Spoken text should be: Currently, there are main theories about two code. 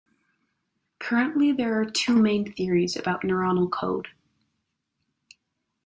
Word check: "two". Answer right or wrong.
wrong